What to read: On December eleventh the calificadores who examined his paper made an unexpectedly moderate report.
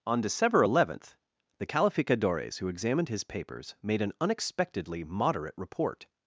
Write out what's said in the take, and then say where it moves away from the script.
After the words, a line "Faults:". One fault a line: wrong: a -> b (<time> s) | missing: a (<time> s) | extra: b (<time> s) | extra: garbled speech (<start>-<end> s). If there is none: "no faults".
On December eleventh the calificadores who examined his papers made an unexpectedly moderate report.
Faults:
wrong: paper -> papers (3.2 s)